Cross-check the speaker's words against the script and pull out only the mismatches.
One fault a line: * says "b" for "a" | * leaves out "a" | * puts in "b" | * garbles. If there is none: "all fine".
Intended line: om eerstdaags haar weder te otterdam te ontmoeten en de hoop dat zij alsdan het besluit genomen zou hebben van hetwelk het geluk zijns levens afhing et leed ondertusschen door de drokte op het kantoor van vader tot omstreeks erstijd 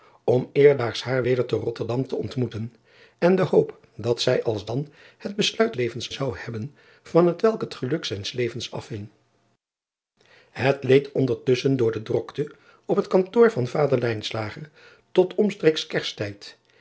* says "levens" for "genomen"